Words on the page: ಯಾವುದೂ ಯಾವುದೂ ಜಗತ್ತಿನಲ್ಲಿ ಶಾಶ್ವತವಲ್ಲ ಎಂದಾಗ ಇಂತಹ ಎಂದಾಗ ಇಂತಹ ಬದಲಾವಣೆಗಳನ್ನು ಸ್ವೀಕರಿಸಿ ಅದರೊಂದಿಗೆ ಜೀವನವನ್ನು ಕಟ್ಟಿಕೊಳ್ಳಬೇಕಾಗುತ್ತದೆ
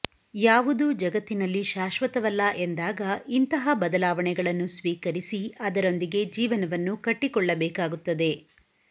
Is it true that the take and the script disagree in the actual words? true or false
true